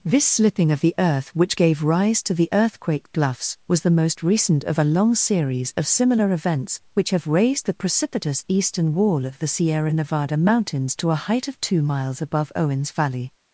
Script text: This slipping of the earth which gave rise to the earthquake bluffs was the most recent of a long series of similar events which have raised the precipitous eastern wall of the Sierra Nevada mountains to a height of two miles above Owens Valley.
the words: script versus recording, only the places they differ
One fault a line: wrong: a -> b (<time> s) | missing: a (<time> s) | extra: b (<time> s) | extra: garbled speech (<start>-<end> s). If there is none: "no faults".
no faults